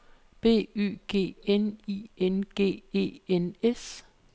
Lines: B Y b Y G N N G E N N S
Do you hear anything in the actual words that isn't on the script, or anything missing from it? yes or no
yes